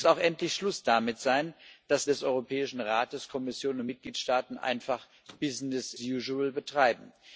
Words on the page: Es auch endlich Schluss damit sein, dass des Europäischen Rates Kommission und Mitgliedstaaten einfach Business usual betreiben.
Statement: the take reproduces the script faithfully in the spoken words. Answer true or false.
true